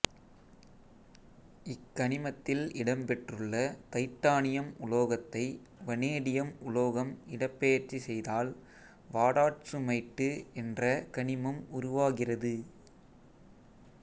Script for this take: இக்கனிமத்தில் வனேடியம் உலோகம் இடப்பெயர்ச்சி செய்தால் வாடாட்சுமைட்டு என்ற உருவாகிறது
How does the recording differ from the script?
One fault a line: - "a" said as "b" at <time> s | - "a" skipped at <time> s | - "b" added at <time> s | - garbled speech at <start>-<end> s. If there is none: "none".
- "இடம்பெற்றுள்ள தைட்டானியம் உலோகத்தை" added at 2.7 s
- "கனிமம்" added at 11.2 s